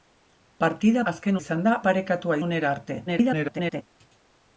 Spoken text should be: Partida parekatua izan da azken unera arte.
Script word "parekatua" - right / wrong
wrong